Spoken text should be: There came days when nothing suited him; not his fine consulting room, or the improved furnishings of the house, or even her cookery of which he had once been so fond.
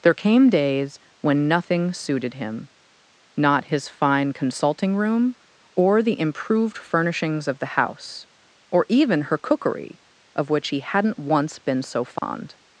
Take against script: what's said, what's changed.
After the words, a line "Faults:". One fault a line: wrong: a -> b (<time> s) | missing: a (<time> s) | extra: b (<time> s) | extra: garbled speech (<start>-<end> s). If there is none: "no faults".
There came days when nothing suited him; not his fine consulting room, or the improved furnishings of the house, or even her cookery of which he hadn't once been so fond.
Faults:
wrong: had -> hadn't (10.8 s)